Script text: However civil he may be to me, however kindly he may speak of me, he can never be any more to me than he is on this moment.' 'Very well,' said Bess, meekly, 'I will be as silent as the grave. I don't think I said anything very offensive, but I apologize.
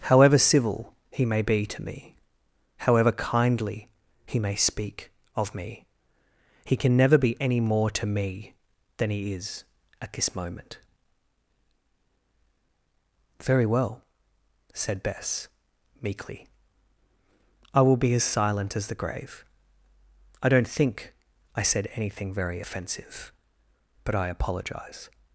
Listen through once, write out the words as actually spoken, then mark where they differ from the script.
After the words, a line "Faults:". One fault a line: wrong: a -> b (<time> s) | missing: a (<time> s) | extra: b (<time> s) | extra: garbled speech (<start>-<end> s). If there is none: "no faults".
However civil he may be to me, however kindly he may speak of me, he can never be any more to me than he is at this moment.' 'Very well,' said Bess, meekly, 'I will be as silent as the grave. I don't think I said anything very offensive, but I apologize.
Faults:
wrong: on -> at (10.0 s)